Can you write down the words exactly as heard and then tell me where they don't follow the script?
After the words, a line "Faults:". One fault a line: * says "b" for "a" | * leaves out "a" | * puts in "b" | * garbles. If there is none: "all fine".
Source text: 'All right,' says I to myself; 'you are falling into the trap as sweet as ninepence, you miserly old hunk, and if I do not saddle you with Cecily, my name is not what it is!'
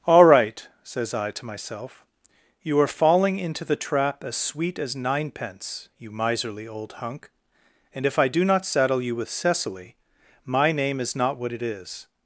'All right,' says I to myself; 'you are falling into the trap as sweet as ninepence, you miserly old hunk, and if I do not saddle you with Cecily, my name is not what it is!'
Faults:
all fine